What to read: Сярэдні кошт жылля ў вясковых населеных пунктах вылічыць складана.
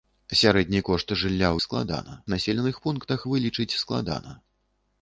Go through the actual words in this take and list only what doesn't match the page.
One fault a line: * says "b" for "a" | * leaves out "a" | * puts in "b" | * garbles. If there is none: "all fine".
* says "складана" for "вясковых"